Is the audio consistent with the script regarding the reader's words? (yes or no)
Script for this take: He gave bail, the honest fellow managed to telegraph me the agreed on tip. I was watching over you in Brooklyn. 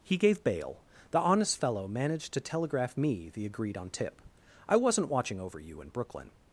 no